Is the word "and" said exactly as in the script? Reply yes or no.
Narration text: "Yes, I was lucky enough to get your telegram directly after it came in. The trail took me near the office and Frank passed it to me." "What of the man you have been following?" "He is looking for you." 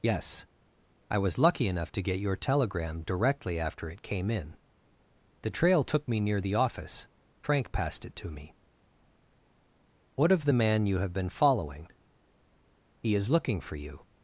no